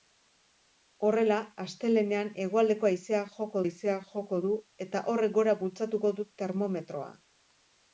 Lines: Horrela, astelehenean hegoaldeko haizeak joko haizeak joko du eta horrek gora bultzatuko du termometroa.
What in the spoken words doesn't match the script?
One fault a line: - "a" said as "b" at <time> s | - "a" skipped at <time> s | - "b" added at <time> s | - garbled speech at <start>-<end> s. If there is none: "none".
none